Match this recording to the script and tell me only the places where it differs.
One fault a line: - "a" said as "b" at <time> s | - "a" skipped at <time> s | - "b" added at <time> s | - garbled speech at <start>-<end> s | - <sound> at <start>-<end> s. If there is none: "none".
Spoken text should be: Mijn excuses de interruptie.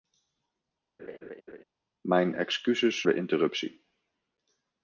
- laugh at 1.0-1.6 s